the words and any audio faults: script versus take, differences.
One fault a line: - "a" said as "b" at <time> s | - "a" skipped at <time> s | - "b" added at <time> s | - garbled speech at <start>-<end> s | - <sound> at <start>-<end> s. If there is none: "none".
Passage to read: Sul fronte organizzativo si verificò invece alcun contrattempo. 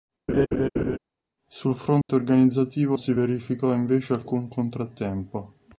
- laugh at 0.3-1.0 s
- dropout at 2.0-2.1 s